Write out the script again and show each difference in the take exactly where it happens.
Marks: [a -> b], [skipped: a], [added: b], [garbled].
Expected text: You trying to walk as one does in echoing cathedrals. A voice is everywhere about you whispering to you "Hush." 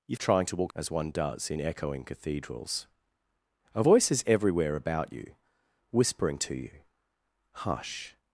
You trying to walk as one does in echoing cathedrals. A voice is everywhere about you whispering to you "Hush."